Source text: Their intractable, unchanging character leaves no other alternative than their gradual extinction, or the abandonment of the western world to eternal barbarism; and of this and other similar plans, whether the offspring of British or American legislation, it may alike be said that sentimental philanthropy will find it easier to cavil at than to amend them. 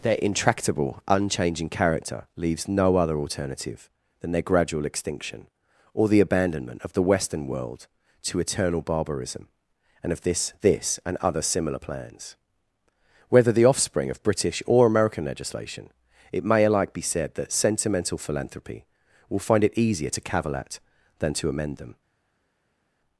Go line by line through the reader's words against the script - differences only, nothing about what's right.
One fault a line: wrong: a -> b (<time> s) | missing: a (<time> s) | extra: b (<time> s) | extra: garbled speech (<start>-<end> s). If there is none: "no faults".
extra: this (10.6 s)